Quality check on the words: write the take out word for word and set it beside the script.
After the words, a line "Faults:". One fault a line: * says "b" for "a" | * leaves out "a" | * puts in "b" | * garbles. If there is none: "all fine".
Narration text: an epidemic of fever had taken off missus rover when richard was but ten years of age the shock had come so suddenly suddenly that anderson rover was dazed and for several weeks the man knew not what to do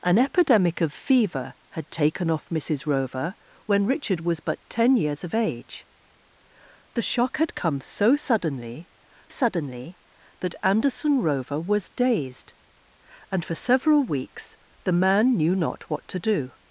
an epidemic of fever had taken off missus rover when richard was but ten years of age the shock had come so suddenly suddenly that anderson rover was dazed and for several weeks the man knew not what to do
Faults:
all fine